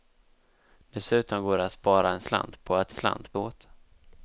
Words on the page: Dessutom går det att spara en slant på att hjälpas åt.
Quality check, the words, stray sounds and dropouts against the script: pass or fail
fail